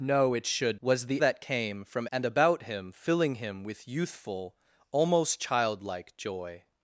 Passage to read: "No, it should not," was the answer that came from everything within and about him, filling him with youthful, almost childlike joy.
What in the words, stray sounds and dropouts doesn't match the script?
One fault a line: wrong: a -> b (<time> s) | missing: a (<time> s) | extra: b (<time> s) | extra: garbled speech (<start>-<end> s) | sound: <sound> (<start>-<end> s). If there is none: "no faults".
missing: not (0.8 s)
missing: answer (1.2 s)
missing: everything within (2.1 s)